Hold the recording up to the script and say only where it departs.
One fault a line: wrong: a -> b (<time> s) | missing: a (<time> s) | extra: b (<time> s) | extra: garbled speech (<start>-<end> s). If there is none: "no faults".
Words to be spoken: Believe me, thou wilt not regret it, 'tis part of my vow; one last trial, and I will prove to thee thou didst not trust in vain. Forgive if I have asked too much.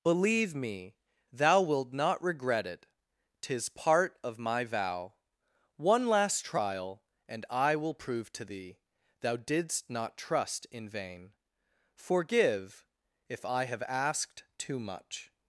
no faults